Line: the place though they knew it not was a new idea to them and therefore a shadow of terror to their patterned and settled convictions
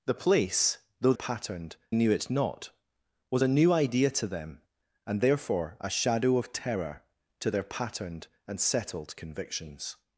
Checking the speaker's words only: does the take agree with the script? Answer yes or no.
no